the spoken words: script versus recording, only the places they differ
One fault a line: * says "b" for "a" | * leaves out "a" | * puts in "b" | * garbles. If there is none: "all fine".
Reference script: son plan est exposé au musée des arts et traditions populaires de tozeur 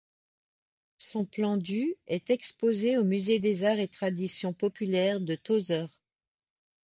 * puts in "du"